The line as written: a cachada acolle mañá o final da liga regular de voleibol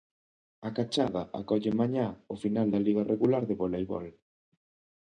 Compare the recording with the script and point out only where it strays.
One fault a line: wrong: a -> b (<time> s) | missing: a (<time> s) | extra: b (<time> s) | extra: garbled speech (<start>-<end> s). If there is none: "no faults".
no faults